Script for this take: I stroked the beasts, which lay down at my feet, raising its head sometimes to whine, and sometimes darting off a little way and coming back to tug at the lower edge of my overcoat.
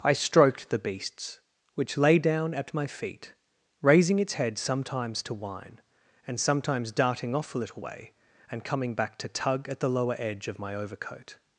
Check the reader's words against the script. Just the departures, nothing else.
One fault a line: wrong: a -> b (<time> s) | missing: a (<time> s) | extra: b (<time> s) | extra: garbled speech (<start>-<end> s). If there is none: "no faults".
no faults